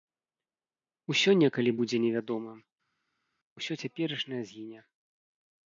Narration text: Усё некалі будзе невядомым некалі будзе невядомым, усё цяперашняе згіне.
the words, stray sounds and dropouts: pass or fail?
fail